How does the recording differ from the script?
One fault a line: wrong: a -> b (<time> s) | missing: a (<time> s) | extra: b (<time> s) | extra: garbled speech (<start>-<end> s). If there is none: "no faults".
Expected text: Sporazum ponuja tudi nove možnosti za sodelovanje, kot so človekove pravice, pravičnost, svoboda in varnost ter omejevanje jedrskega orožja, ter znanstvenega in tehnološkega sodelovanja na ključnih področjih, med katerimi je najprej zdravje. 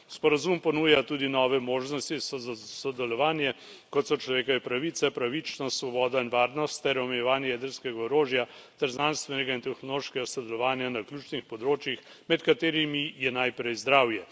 no faults